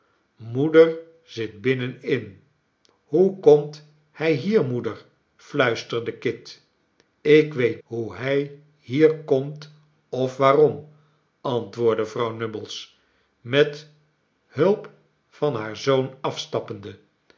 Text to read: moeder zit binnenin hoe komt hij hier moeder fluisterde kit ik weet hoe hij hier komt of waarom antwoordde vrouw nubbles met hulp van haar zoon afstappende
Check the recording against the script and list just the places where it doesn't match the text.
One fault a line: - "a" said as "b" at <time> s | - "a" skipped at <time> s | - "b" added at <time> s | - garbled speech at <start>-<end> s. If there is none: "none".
none